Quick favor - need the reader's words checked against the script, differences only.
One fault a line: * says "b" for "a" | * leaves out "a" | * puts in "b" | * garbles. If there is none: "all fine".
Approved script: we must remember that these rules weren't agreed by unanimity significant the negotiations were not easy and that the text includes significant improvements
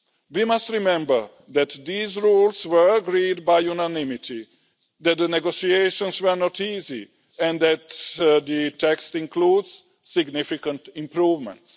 * says "were" for "weren't"
* says "that" for "significant"